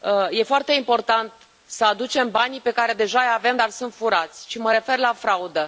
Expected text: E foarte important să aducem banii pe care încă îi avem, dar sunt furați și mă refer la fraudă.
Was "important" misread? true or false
false